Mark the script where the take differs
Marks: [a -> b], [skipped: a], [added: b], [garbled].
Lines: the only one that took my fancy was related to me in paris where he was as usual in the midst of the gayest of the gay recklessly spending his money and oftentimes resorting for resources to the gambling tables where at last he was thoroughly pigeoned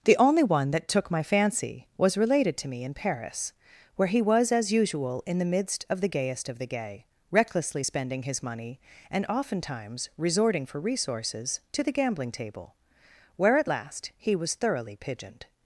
the only one that took my fancy was related to me in paris where he was as usual in the midst of the gayest of the gay recklessly spending his money and oftentimes resorting for resources to the gambling [tables -> table] where at last he was thoroughly pigeoned